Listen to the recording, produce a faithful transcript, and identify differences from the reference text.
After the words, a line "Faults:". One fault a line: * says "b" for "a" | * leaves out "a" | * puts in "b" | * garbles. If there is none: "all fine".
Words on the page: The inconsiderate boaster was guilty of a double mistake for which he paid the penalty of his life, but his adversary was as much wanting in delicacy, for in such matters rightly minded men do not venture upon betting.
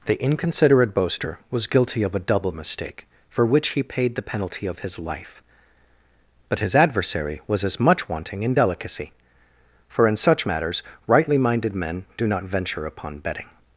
The inconsiderate boaster was guilty of a double mistake for which he paid the penalty of his life, but his adversary was as much wanting in delicacy, for in such matters rightly minded men do not venture upon betting.
Faults:
all fine